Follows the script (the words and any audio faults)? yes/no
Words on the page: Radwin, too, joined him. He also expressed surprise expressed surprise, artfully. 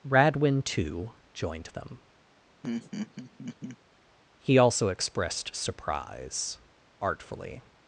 no